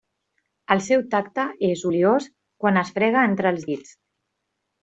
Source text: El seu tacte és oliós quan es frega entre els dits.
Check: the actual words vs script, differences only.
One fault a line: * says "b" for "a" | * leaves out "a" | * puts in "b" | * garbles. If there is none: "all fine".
all fine